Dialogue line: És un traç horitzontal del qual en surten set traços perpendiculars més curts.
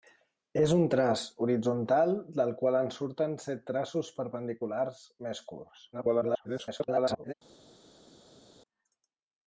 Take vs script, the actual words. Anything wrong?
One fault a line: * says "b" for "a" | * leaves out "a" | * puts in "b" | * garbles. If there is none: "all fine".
* garbles